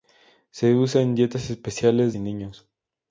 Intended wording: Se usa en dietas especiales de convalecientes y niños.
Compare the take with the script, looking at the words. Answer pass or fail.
fail